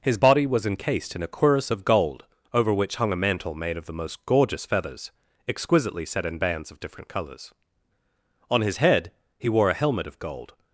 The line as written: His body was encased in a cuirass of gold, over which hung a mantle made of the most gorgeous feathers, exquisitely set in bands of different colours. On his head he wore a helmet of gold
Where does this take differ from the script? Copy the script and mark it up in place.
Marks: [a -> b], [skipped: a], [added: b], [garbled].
His body was encased in a cuirass of gold, over which hung a mantle made of the most gorgeous feathers, exquisitely set in bands of different colours. On his head he wore a helmet of gold